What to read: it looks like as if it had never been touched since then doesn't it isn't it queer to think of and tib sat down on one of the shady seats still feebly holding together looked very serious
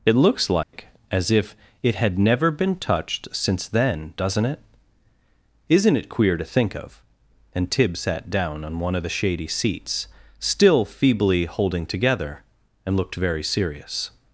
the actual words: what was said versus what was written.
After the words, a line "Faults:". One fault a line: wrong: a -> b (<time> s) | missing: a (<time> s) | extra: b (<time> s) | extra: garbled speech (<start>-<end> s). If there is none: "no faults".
it looks like as if it had never been touched since then doesn't it isn't it queer to think of and tib sat down on one of the shady seats still feebly holding together and looked very serious
Faults:
extra: and (12.9 s)